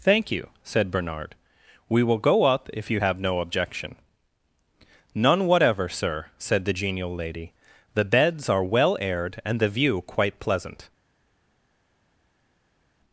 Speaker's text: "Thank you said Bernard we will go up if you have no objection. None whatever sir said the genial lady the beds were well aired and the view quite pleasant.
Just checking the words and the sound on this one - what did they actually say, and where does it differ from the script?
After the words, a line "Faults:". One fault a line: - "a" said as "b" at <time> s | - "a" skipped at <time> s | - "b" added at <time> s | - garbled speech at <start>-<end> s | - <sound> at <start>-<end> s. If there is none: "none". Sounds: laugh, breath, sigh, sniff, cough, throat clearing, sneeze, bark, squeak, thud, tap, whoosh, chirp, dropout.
"Thank you said Bernard we will go up if you have no objection. None whatever sir said the genial lady the beds are well aired and the view quite pleasant.
Faults:
- "were" said as "are" at 8.5 s